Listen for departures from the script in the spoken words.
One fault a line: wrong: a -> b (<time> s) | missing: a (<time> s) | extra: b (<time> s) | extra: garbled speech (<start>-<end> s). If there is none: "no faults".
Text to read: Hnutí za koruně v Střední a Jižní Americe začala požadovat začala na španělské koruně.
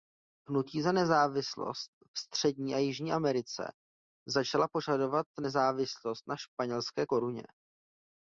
wrong: koruně -> nezávislost (0.9 s)
wrong: začala -> nezávislost (5.4 s)